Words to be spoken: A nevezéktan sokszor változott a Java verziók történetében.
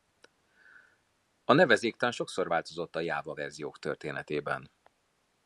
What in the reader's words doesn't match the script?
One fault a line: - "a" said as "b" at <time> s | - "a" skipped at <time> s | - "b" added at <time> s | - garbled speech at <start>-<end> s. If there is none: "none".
none